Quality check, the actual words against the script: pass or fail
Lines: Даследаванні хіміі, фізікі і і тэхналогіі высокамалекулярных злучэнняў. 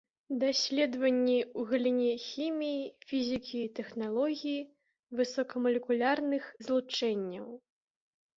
fail